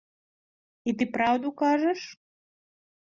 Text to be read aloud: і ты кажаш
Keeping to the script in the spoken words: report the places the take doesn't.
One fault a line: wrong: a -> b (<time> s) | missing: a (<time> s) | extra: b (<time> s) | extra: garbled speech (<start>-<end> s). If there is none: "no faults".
extra: праўду (1.2 s)